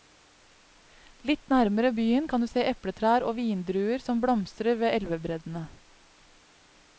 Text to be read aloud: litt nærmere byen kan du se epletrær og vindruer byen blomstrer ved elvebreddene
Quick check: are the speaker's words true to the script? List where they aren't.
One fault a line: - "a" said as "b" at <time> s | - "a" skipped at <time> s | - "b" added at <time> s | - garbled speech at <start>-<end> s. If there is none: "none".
- "byen" said as "som" at 4.1 s